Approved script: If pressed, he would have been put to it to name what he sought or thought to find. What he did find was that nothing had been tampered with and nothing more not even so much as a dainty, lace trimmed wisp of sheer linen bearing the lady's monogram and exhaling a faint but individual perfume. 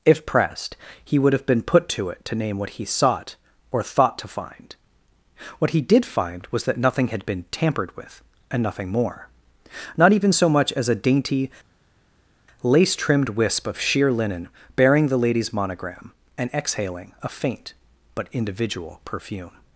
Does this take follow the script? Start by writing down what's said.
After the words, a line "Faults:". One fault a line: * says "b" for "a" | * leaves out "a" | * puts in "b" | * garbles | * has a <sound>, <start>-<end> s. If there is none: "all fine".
If pressed, he would have been put to it to name what he sought or thought to find. What he did find was that nothing had been tampered with and nothing more not even so much as a dainty, lace trimmed wisp of sheer linen bearing the lady's monogram and exhaling a faint but individual perfume.
Faults:
all fine